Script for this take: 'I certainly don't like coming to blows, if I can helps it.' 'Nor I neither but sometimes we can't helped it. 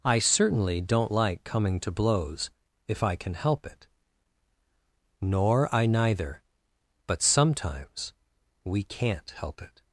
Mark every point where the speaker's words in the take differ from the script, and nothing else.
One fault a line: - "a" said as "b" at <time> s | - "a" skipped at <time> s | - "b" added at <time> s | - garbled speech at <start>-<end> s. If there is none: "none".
- "helps" said as "help" at 3.3 s
- "helped" said as "help" at 9.3 s